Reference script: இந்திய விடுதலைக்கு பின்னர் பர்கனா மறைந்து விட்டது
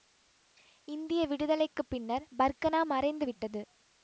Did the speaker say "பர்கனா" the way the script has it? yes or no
yes